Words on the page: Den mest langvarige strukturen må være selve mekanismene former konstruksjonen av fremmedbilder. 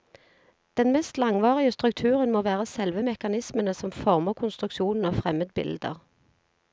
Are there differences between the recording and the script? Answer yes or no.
yes